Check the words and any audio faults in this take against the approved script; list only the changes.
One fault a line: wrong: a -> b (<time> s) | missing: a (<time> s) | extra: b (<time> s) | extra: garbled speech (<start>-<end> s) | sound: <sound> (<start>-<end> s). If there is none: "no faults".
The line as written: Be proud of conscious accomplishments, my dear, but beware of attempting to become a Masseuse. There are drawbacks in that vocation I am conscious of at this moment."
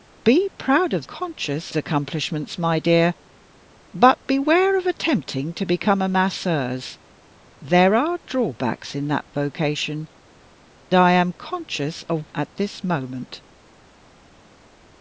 no faults